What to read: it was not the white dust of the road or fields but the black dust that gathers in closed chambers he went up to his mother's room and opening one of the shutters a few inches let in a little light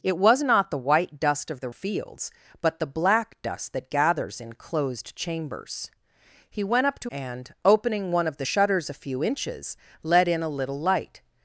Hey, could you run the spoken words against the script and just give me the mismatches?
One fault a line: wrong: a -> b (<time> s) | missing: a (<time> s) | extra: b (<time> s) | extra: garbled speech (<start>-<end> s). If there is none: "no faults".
missing: road or (1.7 s)
missing: his mother's room (7.1 s)